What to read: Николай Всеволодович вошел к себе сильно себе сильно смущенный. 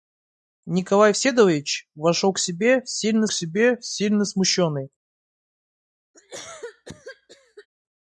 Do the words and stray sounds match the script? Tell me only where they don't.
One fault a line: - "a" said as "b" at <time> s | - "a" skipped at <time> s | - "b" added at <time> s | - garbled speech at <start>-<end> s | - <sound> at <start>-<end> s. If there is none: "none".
- cough at 6.1-7.7 s